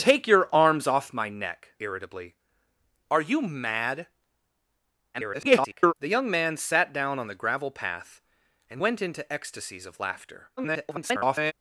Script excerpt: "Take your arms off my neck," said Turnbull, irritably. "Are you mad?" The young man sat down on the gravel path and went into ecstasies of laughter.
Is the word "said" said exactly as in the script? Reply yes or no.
no